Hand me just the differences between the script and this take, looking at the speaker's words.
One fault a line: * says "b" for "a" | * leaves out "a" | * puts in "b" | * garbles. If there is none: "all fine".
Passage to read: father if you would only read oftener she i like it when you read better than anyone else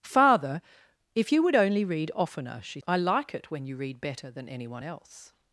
all fine